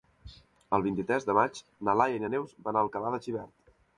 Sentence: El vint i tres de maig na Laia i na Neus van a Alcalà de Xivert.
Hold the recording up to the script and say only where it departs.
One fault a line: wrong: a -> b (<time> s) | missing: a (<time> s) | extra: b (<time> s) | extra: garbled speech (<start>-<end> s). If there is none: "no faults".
no faults